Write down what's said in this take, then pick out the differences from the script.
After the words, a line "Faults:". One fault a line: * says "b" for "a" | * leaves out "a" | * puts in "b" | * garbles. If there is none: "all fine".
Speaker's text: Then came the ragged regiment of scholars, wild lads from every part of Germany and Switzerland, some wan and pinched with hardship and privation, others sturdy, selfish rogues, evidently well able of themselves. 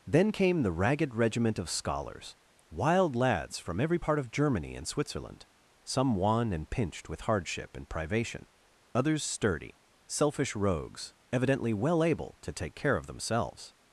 Then came the ragged regiment of scholars, wild lads from every part of Germany and Switzerland, some wan and pinched with hardship and privation, others sturdy, selfish rogues, evidently well able to take care of themselves.
Faults:
* puts in "to take care"